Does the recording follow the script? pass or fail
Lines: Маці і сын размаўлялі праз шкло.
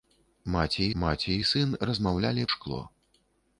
fail